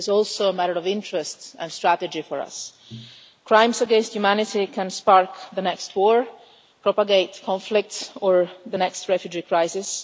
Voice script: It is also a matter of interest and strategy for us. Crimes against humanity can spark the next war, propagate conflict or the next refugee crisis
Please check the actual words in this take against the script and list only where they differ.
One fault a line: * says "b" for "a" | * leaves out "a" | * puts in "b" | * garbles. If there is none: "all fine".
all fine